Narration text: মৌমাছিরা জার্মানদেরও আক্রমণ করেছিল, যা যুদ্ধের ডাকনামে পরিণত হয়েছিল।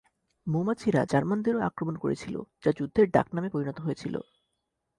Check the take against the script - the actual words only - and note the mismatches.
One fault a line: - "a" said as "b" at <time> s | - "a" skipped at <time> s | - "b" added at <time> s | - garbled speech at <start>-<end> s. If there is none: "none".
none